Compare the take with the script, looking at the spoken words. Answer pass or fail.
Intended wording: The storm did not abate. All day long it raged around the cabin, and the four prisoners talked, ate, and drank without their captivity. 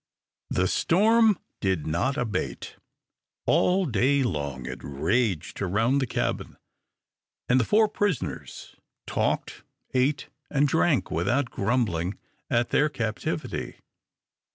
fail